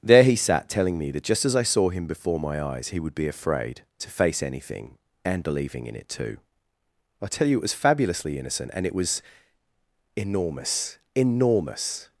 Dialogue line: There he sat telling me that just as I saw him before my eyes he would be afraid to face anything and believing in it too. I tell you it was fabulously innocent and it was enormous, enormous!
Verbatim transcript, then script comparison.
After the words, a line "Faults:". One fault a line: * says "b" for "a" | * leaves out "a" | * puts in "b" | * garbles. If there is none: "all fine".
There he sat telling me that just as I saw him before my eyes he would be afraid to face anything and believing in it too. I tell you it was fabulously innocent and it was enormous, enormous!
Faults:
all fine